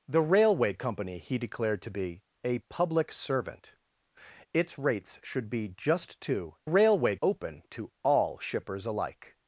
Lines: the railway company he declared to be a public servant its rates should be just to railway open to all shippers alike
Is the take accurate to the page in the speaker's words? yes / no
yes